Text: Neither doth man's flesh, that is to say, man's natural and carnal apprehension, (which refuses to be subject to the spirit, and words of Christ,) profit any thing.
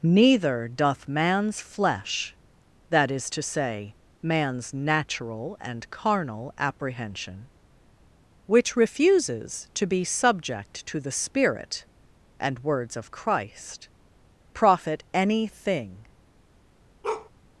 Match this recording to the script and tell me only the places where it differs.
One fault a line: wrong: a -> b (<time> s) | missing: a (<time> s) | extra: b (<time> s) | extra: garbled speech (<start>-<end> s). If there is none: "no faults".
no faults